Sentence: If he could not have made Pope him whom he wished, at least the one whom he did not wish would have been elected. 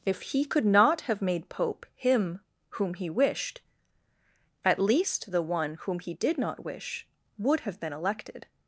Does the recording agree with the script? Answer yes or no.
yes